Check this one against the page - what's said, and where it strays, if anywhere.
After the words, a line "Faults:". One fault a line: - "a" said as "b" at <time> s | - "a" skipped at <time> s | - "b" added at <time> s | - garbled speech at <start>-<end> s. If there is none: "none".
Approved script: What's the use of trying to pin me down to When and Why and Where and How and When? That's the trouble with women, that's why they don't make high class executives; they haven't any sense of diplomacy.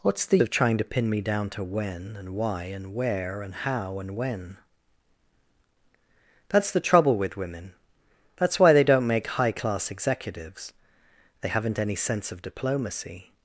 What's the of trying to pin me down to When and Why and Where and How and When? That's the trouble with women, that's why they don't make high class executives; they haven't any sense of diplomacy.
Faults:
- "use" skipped at 0.4 s